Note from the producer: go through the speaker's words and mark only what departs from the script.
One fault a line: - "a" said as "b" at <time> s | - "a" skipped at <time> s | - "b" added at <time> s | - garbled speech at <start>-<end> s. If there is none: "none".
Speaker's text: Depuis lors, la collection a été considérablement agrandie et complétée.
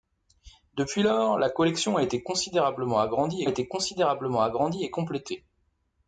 - "été considérablement agrandie" added at 3.5 s